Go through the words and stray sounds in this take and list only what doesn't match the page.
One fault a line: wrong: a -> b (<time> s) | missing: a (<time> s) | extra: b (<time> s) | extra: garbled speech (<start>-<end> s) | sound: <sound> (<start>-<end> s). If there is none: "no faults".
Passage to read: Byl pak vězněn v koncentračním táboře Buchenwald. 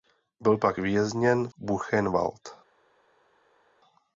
missing: v koncentračním táboře (1.5 s)